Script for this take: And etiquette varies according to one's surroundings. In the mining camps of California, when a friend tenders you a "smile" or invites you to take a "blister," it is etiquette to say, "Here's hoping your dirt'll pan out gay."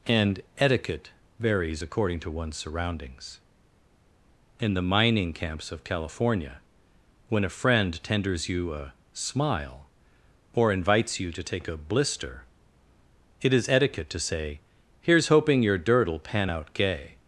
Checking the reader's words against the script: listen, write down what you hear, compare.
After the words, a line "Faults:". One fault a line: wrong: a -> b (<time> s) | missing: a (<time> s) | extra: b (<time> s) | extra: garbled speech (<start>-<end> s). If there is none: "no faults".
And etiquette varies according to one's surroundings. In the mining camps of California, when a friend tenders you a "smile" or invites you to take a "blister," it is etiquette to say, "Here's hoping your dirt'll pan out gay."
Faults:
no faults